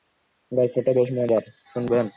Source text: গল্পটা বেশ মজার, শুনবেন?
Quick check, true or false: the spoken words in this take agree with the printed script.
true